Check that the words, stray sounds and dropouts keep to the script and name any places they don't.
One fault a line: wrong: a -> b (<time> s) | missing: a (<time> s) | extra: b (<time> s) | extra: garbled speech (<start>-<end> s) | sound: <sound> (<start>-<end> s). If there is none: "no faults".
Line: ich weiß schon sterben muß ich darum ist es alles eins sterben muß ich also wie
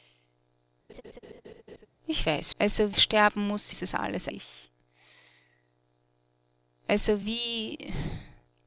sound: laugh (0.9-1.9 s)
wrong: schon -> also (2.6 s)
missing: ich darum (3.7 s)
missing: eins sterben muß (4.3 s)